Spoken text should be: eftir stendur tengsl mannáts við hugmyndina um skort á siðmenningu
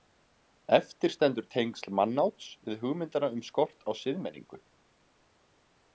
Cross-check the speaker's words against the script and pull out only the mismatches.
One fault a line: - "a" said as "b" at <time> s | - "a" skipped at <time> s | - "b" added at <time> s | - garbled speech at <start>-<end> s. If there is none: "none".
none